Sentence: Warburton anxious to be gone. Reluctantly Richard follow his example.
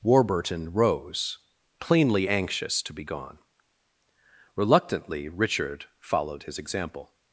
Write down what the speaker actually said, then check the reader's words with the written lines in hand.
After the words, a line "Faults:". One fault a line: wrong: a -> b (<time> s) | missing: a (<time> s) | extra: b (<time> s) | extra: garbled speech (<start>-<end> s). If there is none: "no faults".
Warburton rose, plainly anxious to be gone. Reluctantly Richard followed his example.
Faults:
extra: rose plainly (0.7 s)
wrong: follow -> followed (6.0 s)